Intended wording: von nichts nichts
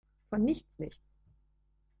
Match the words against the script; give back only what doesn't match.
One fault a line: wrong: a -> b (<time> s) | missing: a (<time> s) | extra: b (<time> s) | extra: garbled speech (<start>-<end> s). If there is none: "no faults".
no faults